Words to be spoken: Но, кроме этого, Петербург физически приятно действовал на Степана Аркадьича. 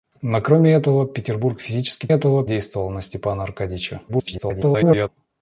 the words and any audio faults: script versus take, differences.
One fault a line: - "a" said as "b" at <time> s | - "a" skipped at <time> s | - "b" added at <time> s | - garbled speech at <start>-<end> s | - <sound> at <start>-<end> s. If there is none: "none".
- "приятно" said as "этого" at 2.1 s
- garbled speech at 4.1-5.1 s